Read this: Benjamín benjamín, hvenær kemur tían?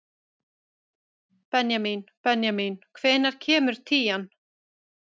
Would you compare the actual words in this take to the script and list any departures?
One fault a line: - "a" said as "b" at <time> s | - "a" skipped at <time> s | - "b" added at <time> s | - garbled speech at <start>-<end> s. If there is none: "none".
none